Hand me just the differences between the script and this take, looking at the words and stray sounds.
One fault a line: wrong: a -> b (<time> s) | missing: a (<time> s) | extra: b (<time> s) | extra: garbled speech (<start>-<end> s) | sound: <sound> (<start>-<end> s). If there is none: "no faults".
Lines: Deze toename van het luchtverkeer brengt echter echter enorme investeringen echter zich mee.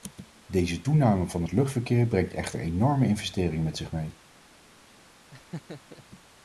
missing: echter (2.6 s)
wrong: echter -> met (3.6 s)
sound: laugh (5.3-6.0 s)